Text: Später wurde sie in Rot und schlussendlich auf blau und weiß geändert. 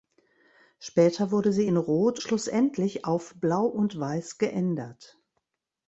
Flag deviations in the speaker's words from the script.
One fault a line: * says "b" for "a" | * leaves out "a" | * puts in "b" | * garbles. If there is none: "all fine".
* leaves out "und"